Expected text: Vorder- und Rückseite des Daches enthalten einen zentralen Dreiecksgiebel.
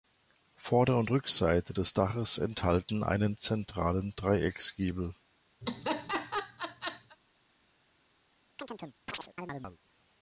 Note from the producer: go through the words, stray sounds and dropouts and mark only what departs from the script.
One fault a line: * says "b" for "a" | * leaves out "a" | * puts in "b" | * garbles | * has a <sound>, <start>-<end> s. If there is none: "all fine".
* has a laugh, 5.6-7.2 s
* has a chirp, 8.6-9.8 s